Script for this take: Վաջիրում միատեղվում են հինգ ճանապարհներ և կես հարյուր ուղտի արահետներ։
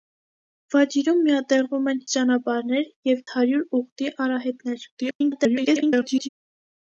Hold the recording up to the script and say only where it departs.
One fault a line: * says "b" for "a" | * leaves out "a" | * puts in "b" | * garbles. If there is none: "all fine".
* leaves out "հինգ"
* leaves out "կես"
* garbles